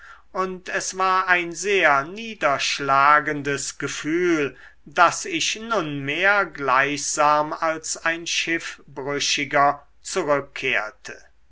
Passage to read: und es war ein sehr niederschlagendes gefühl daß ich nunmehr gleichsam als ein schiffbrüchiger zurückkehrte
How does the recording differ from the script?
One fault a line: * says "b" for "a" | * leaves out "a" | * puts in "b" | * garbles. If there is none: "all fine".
all fine